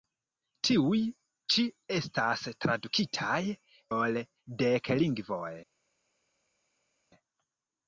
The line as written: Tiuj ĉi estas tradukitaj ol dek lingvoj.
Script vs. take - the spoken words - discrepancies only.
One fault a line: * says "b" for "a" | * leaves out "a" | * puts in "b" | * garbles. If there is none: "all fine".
all fine